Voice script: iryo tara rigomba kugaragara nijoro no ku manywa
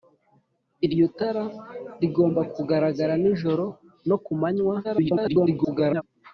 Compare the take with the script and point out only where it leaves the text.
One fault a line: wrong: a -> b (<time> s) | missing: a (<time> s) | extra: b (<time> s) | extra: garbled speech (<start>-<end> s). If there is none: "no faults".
extra: garbled speech (4.8-6.0 s)